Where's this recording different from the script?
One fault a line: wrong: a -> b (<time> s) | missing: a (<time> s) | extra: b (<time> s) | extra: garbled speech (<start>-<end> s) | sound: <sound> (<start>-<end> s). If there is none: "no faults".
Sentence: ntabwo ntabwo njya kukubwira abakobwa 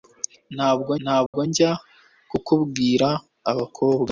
sound: dropout (1.3-1.3 s)